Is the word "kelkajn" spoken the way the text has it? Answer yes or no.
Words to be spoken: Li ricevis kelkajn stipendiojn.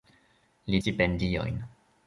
no